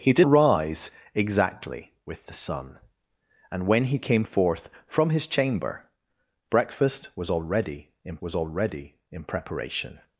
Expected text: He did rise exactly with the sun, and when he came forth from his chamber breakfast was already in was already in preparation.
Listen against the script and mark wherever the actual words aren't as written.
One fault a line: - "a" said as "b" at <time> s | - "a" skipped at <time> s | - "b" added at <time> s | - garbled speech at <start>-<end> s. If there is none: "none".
none